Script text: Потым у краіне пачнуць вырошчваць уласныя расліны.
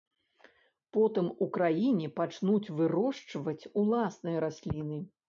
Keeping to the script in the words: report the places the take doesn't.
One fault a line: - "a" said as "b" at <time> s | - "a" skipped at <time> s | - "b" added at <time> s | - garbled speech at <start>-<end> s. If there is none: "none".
none